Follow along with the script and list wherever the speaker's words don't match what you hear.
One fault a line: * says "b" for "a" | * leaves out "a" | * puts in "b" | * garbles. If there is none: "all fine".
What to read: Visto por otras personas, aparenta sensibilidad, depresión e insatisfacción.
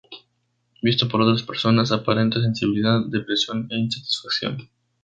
all fine